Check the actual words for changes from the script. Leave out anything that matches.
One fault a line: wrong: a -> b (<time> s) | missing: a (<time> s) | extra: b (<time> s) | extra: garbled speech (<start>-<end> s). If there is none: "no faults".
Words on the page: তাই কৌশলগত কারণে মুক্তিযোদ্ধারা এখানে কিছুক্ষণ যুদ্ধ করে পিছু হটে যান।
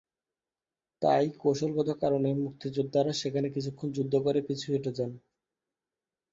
wrong: এখানে -> সেখানে (3.1 s)